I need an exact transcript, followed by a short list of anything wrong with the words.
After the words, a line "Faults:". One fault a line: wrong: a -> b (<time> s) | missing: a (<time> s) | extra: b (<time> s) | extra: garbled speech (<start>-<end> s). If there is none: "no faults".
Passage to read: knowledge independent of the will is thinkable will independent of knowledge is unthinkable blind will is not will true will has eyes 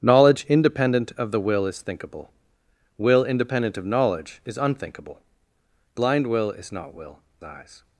knowledge independent of the will is thinkable will independent of knowledge is unthinkable blind will is not will eyes
Faults:
missing: true will has (7.2 s)